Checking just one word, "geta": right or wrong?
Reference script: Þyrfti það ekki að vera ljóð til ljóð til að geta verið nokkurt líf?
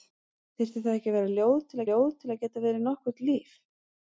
right